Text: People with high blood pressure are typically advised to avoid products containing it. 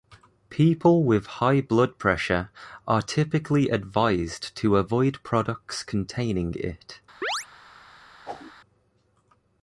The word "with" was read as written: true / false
true